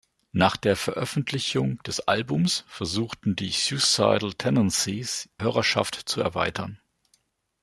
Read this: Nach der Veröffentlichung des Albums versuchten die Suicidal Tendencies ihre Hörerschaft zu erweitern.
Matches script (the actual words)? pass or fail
fail